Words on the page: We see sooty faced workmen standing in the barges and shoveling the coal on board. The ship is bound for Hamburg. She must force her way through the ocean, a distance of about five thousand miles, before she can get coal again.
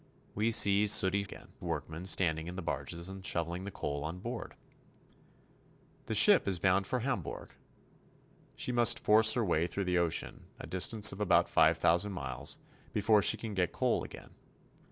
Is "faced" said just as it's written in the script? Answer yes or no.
no